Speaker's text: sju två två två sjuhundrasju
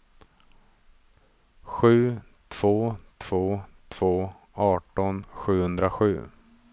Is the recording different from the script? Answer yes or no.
yes